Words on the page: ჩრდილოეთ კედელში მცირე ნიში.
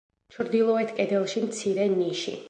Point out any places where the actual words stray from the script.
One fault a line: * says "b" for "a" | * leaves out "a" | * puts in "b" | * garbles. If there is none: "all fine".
all fine